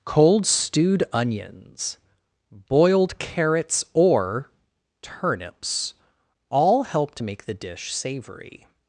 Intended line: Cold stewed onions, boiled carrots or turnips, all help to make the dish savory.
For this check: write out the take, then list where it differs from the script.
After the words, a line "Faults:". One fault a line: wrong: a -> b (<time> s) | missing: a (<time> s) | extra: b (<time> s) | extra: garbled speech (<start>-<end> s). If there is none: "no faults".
Cold stewed onions, boiled carrots or turnips, all help to make the dish savory.
Faults:
no faults